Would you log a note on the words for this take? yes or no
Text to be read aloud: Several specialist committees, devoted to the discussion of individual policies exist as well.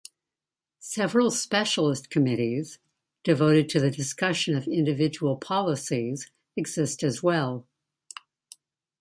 no